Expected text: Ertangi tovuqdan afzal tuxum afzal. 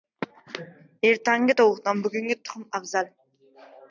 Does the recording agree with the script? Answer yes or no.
no